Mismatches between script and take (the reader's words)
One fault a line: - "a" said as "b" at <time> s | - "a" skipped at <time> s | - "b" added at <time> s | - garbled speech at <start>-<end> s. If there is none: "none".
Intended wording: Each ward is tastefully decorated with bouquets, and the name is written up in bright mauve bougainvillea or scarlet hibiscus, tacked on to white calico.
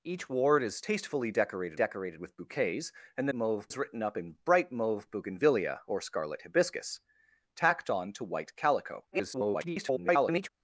- "decorated" added at 1.7 s
- "name" said as "mauve" at 3.3 s
- garbled speech at 9.1-10.5 s